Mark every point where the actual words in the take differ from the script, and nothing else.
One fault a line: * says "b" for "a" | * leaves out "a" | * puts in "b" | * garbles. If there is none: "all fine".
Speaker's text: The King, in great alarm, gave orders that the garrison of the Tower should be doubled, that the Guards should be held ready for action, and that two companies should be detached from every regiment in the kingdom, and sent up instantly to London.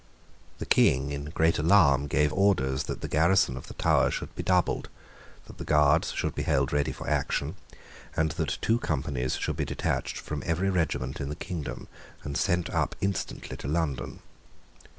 all fine